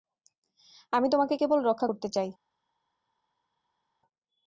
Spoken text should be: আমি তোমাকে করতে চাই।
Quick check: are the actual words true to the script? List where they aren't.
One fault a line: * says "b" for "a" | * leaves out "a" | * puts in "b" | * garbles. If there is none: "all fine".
* puts in "কেবল রক্ষা"